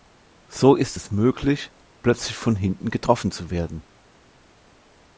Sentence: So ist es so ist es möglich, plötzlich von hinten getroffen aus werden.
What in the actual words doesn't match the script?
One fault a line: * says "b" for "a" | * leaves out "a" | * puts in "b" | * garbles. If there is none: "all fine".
* leaves out "so ist es"
* says "zu" for "aus"